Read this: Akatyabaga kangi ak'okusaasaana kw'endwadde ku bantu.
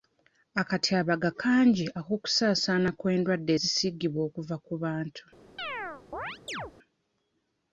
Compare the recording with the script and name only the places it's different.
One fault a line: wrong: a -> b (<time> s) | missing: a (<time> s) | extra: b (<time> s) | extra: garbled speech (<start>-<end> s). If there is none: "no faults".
extra: ezisiigibwa okuva (3.5 s)